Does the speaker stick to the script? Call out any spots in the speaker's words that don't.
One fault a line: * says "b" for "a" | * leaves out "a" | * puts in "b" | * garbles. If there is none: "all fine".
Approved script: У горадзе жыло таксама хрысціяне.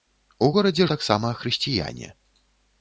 * leaves out "жыло"